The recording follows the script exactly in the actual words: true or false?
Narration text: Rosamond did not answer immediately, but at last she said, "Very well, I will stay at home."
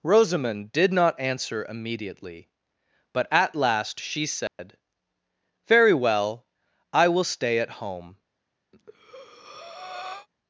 true